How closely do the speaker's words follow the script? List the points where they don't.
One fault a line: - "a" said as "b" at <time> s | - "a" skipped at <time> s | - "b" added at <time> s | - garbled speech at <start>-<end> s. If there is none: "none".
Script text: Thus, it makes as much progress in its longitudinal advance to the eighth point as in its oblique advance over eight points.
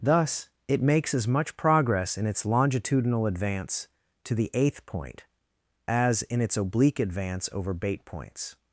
- "eight" said as "bait" at 7.7 s